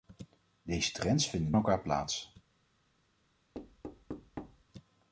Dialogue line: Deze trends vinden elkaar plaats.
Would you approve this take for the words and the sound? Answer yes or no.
no